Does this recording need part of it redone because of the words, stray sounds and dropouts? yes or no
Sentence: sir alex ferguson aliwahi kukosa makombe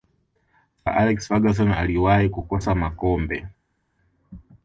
no